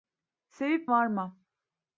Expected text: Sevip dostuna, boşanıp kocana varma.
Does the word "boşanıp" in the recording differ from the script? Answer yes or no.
yes